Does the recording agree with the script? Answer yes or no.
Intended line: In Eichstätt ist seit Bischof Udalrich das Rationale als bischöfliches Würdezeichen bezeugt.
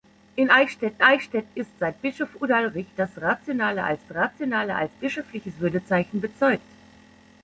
no